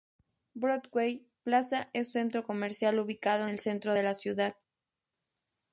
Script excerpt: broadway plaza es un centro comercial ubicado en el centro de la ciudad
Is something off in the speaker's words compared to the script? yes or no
yes